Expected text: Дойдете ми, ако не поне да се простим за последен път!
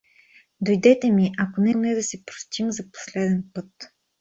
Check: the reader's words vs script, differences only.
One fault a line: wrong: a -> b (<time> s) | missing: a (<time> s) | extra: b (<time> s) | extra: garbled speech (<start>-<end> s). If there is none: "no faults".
no faults